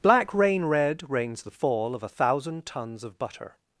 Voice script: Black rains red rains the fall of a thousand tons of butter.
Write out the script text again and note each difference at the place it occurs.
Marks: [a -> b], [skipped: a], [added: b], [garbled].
Black [rains -> rain] red rains the fall of a thousand tons of butter.